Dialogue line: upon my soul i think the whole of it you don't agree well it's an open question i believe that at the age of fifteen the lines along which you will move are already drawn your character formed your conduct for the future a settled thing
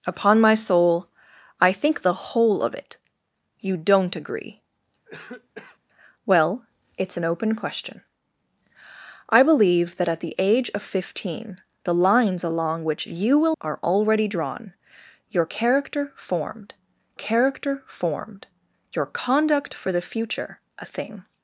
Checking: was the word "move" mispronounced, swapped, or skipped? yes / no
yes